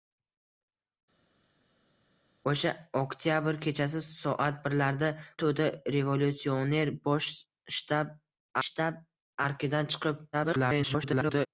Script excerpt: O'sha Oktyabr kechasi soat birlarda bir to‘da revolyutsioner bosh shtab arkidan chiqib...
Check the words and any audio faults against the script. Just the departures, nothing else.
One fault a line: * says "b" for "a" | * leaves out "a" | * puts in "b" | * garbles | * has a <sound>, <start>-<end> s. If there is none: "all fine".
* leaves out "bir"
* puts in "shtab"
* garbles